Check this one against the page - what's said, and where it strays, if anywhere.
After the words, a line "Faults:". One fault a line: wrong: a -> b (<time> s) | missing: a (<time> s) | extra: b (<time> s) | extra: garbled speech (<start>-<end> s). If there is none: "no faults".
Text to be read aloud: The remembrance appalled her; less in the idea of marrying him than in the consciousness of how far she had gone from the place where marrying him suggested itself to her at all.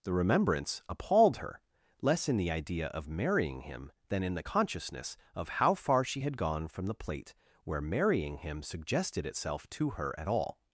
The remembrance appalled her; less in the idea of marrying him than in the consciousness of how far she had gone from the plate where marrying him suggested itself to her at all.
Faults:
wrong: place -> plate (6.9 s)